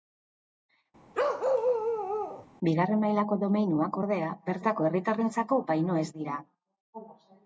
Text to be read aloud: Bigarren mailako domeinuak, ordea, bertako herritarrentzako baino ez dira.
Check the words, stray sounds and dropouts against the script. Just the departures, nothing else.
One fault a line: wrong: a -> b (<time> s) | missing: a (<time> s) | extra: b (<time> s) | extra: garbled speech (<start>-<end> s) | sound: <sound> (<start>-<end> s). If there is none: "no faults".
sound: bark (1.1-2.5 s)